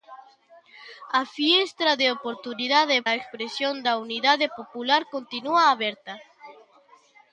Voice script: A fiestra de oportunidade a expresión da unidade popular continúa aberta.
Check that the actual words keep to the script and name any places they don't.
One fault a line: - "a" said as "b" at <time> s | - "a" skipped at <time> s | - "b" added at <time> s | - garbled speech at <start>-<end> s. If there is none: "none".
none